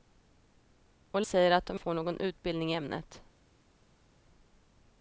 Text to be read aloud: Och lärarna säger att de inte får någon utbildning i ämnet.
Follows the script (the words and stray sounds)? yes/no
no